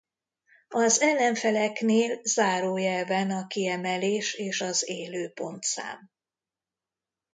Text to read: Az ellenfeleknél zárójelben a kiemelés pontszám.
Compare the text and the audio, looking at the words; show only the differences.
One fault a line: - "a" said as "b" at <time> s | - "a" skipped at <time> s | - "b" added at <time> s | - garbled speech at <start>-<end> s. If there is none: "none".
- "és az Élő" added at 4.3 s